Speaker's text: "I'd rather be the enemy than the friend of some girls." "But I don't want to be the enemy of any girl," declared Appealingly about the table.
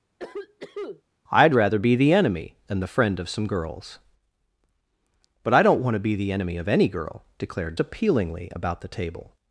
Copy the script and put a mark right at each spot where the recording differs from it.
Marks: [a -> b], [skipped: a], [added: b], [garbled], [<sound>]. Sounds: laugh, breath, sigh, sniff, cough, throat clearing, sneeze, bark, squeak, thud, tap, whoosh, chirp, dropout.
[cough] "I'd rather be the enemy than the friend of some girls." "But I don't want to be the enemy of any girl," declared Appealingly about the table.